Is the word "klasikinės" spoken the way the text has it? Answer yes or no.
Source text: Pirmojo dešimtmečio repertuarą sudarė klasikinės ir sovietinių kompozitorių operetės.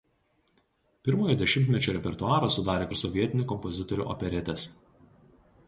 no